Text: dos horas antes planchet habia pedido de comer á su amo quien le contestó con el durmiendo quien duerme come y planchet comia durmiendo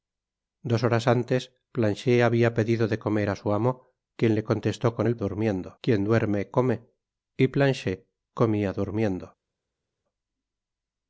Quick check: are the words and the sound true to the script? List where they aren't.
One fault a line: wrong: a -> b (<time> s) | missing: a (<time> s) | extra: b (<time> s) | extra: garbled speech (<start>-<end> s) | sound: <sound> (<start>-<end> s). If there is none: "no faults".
no faults